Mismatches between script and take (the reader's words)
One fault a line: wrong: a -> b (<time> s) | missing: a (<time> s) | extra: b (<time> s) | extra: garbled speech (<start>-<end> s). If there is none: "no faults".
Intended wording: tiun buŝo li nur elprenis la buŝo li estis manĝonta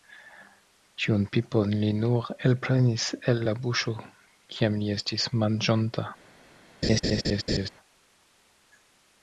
wrong: buŝo -> pipon (1.4 s)
extra: el (3.3 s)
extra: kiam (4.5 s)